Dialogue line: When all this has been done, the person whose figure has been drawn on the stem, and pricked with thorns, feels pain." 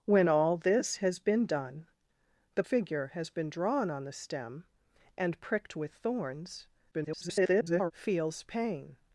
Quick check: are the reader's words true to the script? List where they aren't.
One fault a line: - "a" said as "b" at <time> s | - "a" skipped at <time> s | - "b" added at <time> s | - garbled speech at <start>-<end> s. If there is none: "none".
- "person whose" skipped at 2.6 s
- garbled speech at 6.9-7.9 s